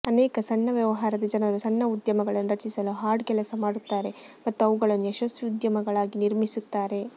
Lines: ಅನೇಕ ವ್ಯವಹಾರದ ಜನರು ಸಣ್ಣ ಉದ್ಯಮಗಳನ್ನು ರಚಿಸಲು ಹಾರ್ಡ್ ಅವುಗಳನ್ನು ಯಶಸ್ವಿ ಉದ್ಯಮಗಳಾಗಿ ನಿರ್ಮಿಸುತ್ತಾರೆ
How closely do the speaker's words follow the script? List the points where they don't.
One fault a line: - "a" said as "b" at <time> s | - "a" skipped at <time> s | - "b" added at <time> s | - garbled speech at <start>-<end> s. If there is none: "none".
- "ಸಣ್ಣ" added at 0.4 s
- "ಕೆಲಸ ಮಾಡುತ್ತಾರೆ ಮತ್ತು" added at 3.3 s